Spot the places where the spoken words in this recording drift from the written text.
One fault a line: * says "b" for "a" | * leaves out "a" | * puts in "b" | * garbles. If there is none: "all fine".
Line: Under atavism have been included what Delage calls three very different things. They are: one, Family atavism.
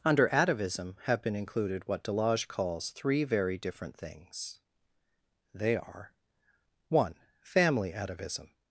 all fine